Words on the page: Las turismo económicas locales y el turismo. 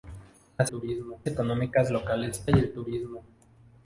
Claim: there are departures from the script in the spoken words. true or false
false